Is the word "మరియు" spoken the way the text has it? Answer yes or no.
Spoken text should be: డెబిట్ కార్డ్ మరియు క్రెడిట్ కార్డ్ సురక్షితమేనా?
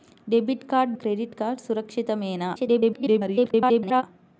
no